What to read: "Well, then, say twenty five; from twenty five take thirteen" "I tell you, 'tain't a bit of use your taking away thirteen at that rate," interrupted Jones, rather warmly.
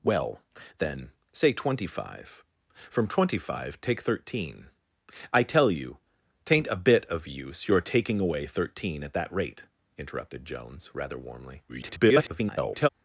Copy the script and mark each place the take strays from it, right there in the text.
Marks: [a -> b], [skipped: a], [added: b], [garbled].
"Well, then, say twenty five; from twenty five take thirteen" "I tell you, 'tain't a bit of use your taking away thirteen at that rate," interrupted Jones, rather warmly. [garbled]